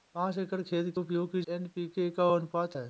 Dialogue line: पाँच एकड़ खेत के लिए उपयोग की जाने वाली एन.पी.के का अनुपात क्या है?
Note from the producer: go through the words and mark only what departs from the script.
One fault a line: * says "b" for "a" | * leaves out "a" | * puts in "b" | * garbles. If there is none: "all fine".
* leaves out "के लिए"
* leaves out "जाने वाली"
* leaves out "क्या"